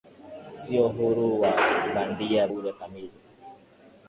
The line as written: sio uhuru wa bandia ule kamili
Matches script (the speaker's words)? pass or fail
pass